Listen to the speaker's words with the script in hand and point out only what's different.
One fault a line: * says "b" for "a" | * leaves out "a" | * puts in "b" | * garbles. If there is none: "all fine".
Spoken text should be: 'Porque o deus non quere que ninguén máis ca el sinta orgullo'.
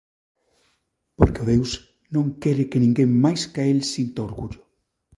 all fine